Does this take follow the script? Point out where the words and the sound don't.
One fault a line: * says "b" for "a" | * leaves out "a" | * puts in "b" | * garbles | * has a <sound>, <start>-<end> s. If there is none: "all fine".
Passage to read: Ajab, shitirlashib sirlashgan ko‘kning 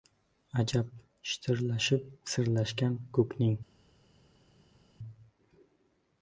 all fine